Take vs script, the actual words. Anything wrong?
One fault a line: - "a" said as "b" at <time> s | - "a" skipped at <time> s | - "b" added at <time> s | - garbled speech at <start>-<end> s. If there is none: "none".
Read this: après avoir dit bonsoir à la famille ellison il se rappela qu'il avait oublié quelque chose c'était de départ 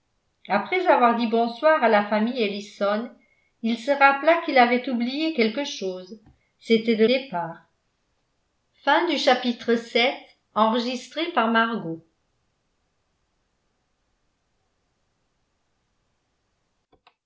none